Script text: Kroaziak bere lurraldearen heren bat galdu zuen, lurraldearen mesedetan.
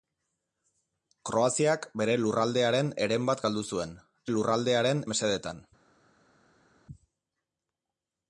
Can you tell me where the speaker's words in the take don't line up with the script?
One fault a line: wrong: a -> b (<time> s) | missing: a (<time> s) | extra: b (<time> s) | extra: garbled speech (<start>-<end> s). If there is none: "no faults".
no faults